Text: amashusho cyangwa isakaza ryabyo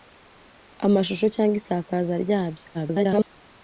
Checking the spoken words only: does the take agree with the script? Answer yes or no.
no